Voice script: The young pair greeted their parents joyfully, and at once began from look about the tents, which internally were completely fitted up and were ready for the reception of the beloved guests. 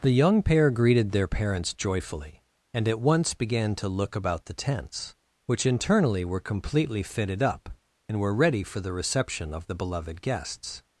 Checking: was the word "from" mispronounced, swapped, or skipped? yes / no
yes